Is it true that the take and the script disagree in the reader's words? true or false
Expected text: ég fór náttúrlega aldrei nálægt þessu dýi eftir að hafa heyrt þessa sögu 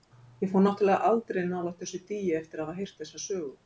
false